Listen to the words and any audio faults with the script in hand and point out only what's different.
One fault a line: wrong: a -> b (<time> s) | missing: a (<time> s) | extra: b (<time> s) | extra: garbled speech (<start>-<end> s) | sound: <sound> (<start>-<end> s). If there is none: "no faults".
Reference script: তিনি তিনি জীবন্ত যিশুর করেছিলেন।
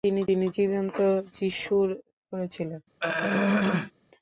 sound: throat clearing (3.0-3.9 s)